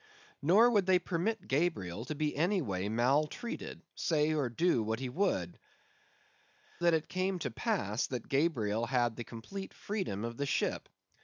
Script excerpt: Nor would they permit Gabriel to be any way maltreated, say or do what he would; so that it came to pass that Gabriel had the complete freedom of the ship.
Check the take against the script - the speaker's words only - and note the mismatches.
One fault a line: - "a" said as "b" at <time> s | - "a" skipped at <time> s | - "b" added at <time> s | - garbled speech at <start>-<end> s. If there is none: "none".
- "so" skipped at 5.6 s